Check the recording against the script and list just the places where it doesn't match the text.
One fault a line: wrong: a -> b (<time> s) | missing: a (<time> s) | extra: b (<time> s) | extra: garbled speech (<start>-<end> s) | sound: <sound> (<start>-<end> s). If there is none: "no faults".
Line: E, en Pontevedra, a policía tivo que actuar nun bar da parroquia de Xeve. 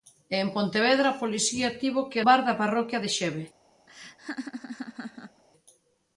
missing: actuar nun (2.2 s)
sound: laugh (3.9-5.4 s)